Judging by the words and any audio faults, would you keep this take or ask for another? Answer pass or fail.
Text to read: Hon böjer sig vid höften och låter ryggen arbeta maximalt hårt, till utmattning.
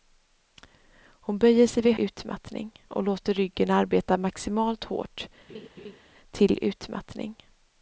fail